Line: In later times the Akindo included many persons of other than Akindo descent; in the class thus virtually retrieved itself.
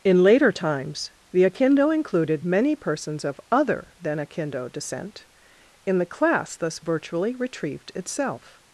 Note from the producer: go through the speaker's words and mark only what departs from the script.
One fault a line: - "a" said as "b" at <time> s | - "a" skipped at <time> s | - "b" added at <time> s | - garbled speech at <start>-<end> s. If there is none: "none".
none